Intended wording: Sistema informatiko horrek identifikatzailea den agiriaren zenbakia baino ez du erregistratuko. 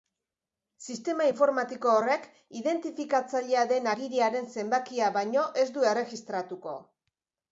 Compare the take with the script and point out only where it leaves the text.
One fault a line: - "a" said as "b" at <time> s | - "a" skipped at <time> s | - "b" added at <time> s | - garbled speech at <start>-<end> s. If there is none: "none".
none